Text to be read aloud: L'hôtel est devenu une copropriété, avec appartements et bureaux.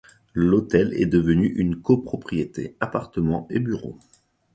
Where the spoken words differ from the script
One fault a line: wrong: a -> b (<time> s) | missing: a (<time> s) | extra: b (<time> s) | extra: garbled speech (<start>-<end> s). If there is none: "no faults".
missing: avec (2.8 s)